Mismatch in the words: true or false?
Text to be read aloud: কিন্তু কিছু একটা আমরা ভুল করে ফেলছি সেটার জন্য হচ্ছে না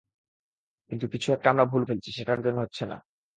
true